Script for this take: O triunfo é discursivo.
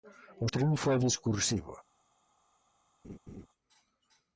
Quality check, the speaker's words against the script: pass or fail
pass